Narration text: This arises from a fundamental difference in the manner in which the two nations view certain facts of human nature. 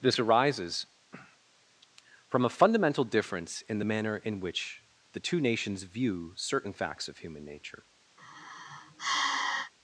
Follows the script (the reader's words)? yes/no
yes